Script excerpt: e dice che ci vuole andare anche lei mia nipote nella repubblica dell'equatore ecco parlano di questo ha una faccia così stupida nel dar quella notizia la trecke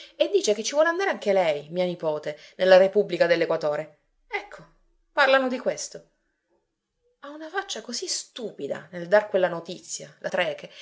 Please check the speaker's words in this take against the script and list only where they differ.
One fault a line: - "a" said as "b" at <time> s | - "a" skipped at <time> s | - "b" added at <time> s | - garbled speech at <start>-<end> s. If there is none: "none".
none